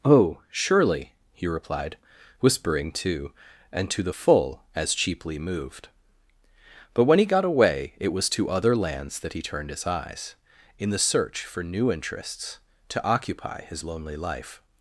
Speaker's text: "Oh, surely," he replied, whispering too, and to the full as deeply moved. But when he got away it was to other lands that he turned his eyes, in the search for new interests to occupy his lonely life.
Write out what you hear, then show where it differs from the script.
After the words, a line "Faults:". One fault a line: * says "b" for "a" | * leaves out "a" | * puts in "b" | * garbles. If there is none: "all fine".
"Oh, surely," he replied, whispering too, and to the full as cheaply moved. But when he got away it was to other lands that he turned his eyes, in the search for new interests to occupy his lonely life.
Faults:
* says "cheaply" for "deeply"